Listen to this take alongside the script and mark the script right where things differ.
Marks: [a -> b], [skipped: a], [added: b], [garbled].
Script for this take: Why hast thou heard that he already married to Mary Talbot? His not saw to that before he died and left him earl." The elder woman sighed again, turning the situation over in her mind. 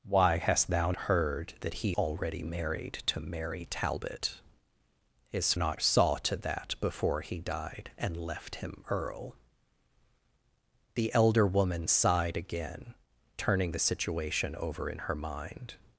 Why hast thou heard that he already married to Mary Talbot? His not saw to that before he died and left him earl." The elder woman sighed again, turning the situation over in her mind.